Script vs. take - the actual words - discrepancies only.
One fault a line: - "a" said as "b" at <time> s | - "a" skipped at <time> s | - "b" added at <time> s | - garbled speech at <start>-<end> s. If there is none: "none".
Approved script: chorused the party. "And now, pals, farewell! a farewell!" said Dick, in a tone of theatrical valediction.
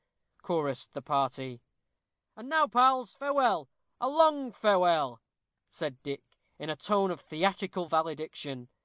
- "long" added at 4.1 s